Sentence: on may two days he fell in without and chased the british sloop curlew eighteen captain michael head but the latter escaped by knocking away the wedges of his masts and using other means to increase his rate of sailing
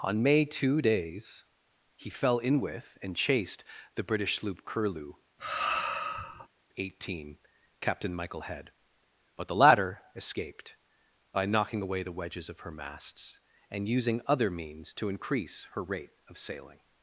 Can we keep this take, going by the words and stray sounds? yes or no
no